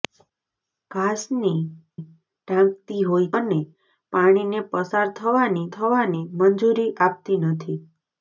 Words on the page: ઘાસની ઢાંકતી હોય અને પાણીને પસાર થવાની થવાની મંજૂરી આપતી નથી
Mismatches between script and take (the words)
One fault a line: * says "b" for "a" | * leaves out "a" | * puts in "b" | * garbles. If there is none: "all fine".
all fine